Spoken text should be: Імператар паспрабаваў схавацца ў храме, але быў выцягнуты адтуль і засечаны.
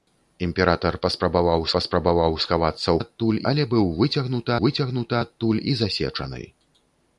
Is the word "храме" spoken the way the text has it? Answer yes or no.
no